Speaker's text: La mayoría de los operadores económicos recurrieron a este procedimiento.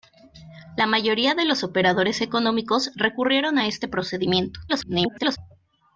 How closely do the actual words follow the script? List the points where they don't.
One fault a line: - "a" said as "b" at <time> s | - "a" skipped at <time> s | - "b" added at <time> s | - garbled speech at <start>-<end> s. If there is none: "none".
- garbled speech at 4.7-5.4 s